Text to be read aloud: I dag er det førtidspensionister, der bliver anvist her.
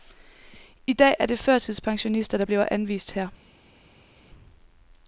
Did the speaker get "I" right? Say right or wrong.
right